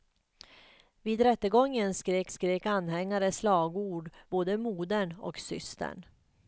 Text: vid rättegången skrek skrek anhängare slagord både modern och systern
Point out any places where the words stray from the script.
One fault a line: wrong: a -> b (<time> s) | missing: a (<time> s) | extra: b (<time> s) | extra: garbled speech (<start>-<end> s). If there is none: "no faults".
no faults